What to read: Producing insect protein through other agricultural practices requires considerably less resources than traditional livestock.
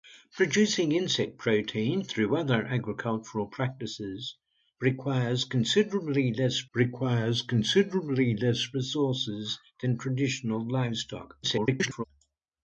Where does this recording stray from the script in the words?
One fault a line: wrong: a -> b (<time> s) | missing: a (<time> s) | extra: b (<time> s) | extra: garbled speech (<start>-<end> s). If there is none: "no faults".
extra: requires considerably less (6.7 s)
extra: garbled speech (11.4-12.0 s)